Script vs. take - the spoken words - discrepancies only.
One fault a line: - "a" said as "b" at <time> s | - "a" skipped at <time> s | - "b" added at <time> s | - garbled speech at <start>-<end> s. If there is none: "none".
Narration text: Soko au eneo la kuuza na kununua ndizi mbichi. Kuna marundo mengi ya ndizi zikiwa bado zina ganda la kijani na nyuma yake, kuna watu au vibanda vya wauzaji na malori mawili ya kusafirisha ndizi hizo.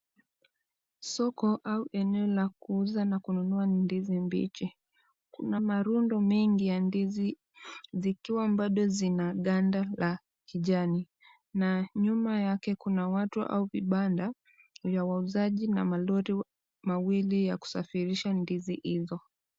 none